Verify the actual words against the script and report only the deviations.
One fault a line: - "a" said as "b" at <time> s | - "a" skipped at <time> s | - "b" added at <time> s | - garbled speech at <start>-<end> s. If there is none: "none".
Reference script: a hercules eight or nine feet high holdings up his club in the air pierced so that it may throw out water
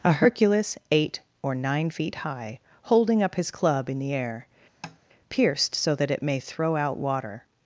- "holdings" said as "holding" at 2.8 s